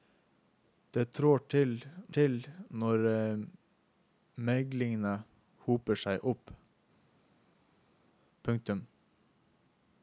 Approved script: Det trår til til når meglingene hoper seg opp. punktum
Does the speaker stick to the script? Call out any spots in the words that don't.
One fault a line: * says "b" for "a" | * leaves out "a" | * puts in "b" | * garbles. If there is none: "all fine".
all fine